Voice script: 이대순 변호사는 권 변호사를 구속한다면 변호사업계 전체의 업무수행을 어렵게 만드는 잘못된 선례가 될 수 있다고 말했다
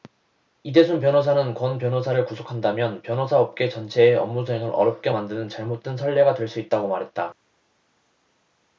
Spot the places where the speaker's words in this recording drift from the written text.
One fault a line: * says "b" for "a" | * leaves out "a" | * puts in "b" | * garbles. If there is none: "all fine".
all fine